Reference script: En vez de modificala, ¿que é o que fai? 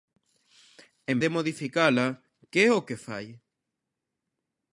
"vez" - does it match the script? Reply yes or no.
no